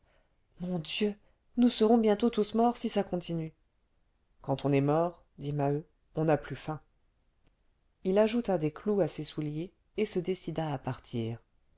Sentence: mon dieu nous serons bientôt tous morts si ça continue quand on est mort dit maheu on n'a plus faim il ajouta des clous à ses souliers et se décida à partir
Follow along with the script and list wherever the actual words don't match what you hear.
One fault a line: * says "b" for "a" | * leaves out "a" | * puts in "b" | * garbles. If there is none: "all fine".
all fine